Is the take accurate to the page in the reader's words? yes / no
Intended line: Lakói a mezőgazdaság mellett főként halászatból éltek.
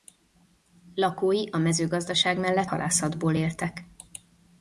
no